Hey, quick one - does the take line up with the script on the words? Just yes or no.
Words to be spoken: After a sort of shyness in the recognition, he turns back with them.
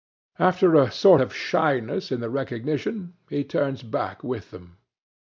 yes